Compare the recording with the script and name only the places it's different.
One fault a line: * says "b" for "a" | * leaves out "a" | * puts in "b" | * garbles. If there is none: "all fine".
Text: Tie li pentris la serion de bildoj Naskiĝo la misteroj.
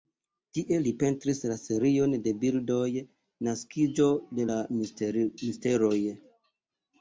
* puts in "de"